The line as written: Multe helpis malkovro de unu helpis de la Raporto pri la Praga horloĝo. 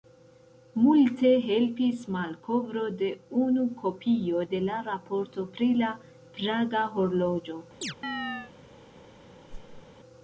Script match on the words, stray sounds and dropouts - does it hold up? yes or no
no